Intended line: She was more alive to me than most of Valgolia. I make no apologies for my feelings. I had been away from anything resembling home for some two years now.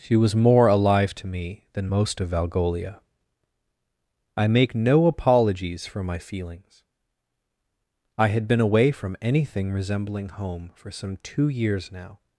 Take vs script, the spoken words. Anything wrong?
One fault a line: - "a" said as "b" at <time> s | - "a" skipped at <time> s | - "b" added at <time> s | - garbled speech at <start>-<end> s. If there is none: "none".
none